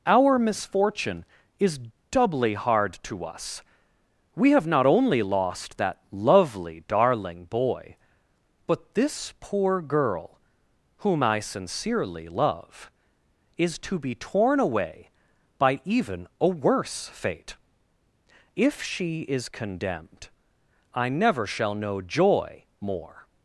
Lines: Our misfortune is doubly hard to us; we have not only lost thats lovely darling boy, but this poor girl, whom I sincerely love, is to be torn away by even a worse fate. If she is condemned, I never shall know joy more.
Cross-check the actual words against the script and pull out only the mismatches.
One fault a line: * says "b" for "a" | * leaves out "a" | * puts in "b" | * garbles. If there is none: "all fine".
* says "that" for "thats"